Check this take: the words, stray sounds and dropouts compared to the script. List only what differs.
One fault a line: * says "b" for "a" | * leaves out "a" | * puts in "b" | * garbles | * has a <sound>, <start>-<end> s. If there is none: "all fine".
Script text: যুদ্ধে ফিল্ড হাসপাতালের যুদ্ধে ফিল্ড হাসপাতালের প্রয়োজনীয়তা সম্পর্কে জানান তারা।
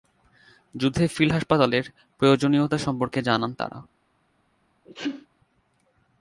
* leaves out "যুদ্ধে ফিল্ড হাসপাতালের"
* has a sneeze, 4.9-5.3 s